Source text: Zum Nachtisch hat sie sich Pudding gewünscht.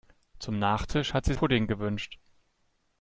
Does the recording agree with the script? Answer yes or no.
no